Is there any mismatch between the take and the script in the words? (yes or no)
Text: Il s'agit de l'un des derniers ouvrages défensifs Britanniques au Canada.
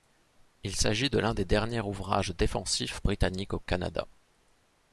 no